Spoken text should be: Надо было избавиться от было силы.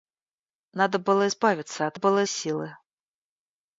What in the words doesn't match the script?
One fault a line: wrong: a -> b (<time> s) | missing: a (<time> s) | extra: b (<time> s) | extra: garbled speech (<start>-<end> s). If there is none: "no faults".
no faults